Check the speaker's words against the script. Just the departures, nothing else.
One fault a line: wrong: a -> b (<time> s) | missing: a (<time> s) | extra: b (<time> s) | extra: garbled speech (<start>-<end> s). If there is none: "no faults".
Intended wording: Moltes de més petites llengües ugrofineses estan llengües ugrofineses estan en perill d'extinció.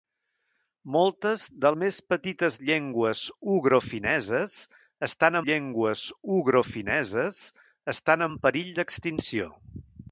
no faults